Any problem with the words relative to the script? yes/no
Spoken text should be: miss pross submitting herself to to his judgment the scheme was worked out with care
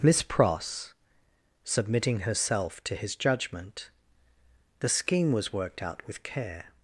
yes